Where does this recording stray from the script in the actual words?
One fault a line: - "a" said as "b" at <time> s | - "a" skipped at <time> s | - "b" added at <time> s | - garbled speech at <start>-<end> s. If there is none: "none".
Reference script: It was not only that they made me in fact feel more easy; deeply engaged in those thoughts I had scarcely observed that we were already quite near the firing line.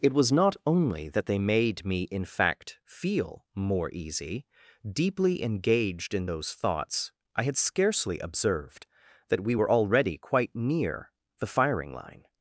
none